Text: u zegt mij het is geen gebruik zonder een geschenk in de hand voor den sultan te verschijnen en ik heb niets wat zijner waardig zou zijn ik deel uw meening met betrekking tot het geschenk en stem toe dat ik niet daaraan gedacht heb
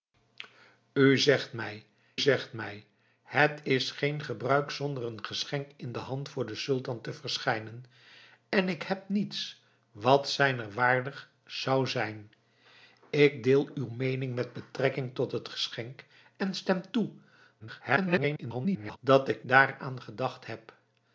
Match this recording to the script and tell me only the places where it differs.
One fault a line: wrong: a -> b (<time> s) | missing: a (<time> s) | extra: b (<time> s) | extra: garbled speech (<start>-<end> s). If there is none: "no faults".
extra: zegt mij (2.2 s)
extra: garbled speech (17.6-19.0 s)
missing: niet (19.5 s)